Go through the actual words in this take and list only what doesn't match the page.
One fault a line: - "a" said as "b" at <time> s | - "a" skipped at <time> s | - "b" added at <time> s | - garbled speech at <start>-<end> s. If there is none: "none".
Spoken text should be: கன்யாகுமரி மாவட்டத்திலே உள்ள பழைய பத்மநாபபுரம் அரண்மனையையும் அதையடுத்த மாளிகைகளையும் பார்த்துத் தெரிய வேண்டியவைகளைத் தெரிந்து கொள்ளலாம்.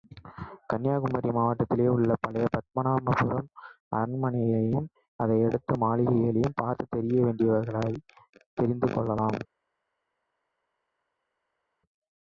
none